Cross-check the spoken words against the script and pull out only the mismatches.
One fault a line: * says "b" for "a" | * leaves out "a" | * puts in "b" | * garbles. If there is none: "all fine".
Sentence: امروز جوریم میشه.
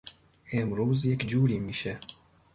* puts in "یک"